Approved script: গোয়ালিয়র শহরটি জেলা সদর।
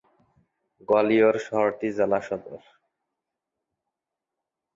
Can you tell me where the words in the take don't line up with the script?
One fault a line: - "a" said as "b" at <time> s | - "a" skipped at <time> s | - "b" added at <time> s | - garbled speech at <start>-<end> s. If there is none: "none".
none